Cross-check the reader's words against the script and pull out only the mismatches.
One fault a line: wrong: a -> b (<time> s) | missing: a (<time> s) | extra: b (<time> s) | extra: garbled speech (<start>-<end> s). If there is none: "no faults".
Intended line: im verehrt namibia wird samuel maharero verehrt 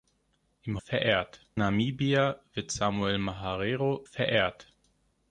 no faults